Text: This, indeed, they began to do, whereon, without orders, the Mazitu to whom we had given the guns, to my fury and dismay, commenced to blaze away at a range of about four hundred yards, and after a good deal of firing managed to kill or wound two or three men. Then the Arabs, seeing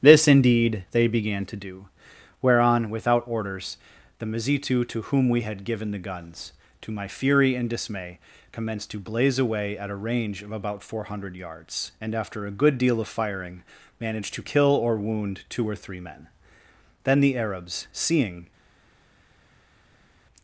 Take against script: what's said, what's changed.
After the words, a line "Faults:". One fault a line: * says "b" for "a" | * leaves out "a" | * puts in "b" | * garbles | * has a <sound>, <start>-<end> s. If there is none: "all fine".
This, indeed, they began to do, whereon, without orders, the Mazitu to whom we had given the guns, to my fury and dismay, commenced to blaze away at a range of about four hundred yards, and after a good deal of firing managed to kill or wound two or three men. Then the Arabs, seeing
Faults:
all fine